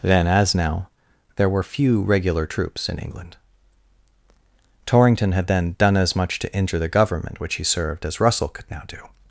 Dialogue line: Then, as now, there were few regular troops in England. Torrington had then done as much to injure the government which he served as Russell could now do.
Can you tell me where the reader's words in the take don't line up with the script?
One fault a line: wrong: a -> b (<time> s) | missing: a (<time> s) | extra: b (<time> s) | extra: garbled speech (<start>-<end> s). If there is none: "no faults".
no faults